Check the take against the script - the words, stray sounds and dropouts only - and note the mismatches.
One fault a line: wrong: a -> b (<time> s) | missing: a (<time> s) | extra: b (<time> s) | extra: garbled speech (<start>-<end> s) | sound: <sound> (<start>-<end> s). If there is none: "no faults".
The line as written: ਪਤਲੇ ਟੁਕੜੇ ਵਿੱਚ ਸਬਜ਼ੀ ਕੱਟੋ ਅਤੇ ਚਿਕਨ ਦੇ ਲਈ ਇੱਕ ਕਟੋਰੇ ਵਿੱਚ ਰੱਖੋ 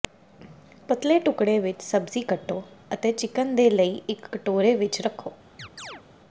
sound: chirp (5.6-6.0 s)